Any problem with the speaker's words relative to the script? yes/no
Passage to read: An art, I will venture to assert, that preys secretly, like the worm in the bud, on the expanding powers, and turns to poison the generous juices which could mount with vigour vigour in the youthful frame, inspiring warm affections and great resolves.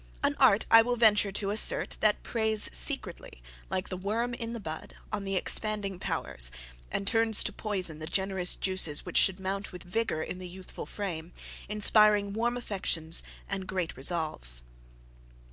yes